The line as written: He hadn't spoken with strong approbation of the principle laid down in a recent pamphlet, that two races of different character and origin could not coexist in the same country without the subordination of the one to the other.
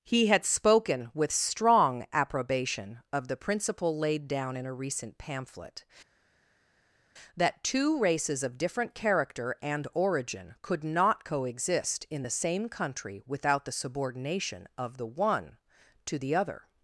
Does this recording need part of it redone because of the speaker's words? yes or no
yes